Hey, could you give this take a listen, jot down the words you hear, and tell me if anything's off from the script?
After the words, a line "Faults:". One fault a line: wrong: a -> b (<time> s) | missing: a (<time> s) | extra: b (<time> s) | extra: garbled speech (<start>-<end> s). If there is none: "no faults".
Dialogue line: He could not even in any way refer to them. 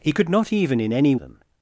He could not even in any them.
Faults:
missing: way refer to (1.1 s)